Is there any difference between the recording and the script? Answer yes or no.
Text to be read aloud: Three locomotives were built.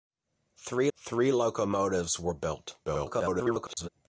yes